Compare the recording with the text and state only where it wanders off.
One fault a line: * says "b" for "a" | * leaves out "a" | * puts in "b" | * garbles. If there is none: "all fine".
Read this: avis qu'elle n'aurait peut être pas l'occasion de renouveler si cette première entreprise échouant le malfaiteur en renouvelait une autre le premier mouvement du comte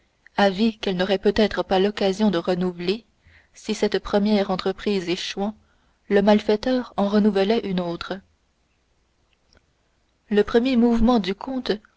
all fine